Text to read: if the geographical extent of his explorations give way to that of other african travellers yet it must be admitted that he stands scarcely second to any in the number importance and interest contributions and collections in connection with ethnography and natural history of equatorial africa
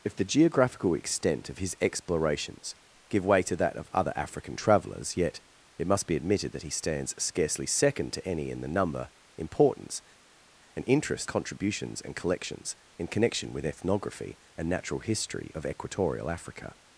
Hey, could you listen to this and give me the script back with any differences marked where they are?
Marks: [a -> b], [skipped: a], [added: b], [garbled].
if the geographical extent of his explorations give way to that of other african travellers yet it must be admitted that he stands scarcely second to any in the number importance and interest contributions and collections in connection with ethnography and natural history of equatorial africa